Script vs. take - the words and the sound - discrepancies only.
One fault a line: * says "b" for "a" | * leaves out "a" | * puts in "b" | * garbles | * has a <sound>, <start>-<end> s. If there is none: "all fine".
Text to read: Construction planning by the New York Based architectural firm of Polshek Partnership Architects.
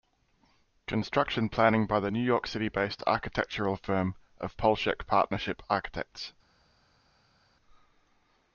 * puts in "City"